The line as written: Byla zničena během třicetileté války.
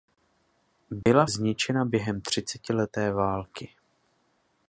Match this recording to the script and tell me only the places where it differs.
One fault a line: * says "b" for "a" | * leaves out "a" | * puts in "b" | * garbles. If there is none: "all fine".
all fine